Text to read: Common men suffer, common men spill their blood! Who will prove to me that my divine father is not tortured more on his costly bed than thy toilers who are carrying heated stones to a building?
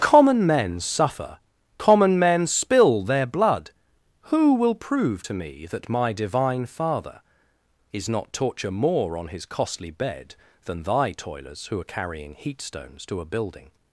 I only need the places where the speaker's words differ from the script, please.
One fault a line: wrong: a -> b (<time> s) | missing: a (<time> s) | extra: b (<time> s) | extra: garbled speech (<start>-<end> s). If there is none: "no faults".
wrong: tortured -> torture (8.3 s)
wrong: heated -> heat (12.3 s)